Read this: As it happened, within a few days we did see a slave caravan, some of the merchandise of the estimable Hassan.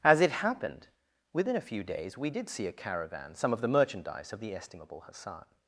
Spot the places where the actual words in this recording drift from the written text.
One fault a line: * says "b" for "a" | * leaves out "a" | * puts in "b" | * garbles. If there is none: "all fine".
* leaves out "slave"